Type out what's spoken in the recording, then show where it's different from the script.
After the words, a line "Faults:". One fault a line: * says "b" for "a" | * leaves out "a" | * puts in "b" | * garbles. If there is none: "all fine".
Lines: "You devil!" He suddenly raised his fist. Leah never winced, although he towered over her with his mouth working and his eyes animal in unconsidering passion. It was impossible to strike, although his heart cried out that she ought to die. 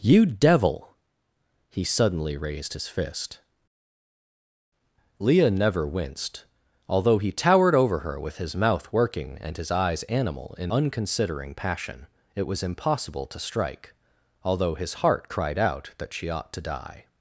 "You devil!" He suddenly raised his fist. Leah never winced, although he towered over her with his mouth working and his eyes animal in unconsidering passion. It was impossible to strike, although his heart cried out that she ought to die.
Faults:
all fine